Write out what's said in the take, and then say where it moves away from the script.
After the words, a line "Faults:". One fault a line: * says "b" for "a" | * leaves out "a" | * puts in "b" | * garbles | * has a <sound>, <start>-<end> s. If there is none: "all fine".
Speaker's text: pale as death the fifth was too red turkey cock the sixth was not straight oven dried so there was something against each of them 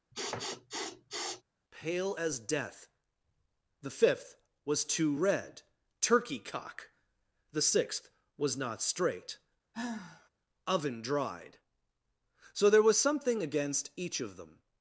pale as death the fifth was too red turkey cock the sixth was not straight oven dried so there was something against each of them
Faults:
* has a sniff, 0.1-1.4 s
* has a sigh, 9.7-10.3 s